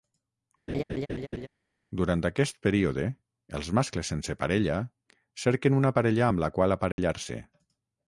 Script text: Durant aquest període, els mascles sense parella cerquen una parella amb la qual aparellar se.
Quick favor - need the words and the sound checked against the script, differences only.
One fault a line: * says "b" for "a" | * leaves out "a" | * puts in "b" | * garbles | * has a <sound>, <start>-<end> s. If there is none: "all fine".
* has a laugh, 0.7-1.5 s
* has a dropout, 6.9-7.0 s